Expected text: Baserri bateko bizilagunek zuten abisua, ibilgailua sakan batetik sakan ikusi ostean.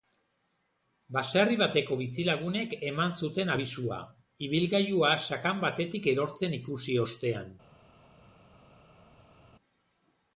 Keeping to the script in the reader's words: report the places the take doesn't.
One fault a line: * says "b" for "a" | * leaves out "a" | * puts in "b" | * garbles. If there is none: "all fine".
* puts in "eman"
* says "erortzen" for "sakan"